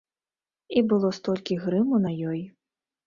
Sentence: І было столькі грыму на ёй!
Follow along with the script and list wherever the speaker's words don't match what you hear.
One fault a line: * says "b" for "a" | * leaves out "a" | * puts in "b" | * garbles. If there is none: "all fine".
all fine